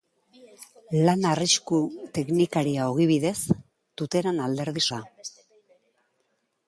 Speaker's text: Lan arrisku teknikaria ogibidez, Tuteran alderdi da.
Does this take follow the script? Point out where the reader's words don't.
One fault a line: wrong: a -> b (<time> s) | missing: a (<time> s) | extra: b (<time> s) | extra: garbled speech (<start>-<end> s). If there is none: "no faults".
no faults